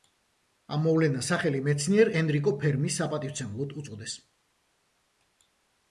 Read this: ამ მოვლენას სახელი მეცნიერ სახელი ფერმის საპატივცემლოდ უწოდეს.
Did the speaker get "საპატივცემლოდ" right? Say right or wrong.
right